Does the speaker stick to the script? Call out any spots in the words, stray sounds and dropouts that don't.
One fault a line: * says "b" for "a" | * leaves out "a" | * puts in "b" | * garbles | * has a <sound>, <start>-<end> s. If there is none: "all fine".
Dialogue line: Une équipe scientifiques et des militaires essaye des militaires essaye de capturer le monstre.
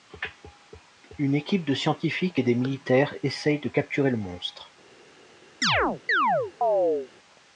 * puts in "de"
* leaves out "des militaires essaye"
* has a chirp, 5.6-7.1 s